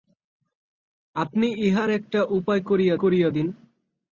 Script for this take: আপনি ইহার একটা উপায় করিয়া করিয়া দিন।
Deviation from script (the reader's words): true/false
false